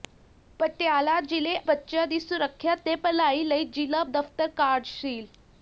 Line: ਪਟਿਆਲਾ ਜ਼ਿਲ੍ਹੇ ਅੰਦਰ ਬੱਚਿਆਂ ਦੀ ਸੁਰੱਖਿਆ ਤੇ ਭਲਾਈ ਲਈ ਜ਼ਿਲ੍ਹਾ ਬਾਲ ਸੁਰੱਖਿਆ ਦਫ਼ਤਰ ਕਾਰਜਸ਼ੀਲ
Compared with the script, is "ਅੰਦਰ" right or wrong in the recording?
wrong